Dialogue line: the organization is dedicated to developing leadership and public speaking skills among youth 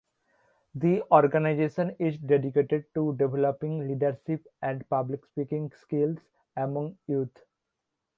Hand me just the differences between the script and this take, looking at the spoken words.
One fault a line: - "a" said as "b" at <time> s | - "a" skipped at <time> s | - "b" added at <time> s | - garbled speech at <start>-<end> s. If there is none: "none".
none